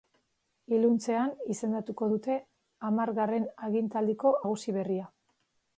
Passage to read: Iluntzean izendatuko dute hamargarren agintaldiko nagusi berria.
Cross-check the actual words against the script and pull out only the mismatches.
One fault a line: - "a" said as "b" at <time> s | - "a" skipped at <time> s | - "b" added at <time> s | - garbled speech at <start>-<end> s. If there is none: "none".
none